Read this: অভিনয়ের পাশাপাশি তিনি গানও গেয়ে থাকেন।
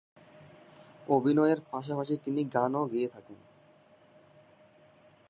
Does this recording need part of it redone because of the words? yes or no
no